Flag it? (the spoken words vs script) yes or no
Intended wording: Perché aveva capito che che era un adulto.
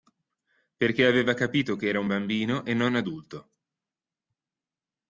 yes